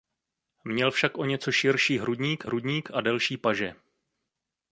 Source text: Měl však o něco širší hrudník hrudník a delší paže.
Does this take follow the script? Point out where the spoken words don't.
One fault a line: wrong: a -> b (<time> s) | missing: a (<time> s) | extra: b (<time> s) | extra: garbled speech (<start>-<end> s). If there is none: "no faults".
no faults